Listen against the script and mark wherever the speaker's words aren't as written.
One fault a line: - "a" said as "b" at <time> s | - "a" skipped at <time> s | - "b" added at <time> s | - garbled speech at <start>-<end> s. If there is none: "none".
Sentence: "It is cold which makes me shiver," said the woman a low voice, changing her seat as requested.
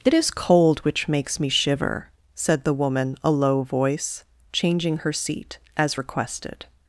none